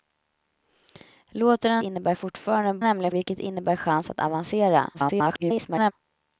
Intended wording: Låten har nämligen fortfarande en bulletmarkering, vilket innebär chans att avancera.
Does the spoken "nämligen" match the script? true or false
false